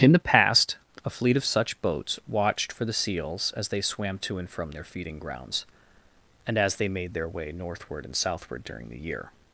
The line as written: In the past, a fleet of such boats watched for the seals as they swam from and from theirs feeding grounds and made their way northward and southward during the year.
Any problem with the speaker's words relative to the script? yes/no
yes